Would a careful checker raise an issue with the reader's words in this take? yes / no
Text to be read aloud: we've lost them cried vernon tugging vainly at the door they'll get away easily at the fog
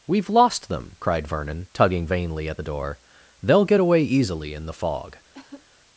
yes